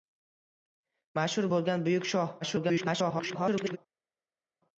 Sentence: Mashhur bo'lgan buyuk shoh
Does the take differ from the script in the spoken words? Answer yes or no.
yes